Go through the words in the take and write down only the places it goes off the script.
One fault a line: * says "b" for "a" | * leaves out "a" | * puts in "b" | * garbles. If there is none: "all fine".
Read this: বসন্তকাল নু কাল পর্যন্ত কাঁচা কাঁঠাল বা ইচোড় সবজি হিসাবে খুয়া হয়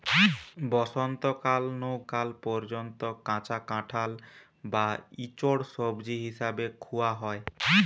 all fine